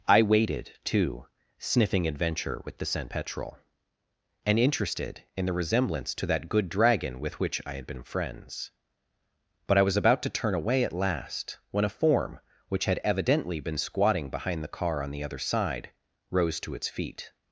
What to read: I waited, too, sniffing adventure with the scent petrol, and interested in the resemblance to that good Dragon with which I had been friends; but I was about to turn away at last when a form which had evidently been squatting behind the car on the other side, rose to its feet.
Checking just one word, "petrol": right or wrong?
right